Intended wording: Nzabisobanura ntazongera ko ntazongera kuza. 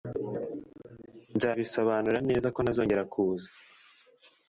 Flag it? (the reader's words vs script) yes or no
yes